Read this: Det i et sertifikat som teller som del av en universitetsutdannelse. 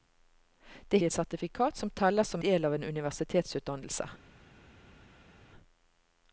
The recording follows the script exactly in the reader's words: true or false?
true